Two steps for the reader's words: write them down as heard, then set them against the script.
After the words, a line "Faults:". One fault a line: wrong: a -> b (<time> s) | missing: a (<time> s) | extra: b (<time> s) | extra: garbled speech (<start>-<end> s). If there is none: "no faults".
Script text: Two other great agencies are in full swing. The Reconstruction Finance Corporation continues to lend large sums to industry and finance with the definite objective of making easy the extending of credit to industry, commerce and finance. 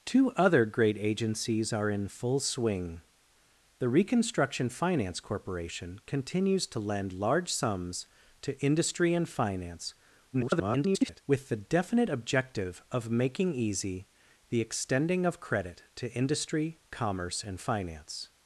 Two other great agencies are in full swing. The Reconstruction Finance Corporation continues to lend large sums to industry and finance [garbled] with the definite objective of making easy the extending of credit to industry, commerce and finance.
Faults:
extra: garbled speech (10.3-11.2 s)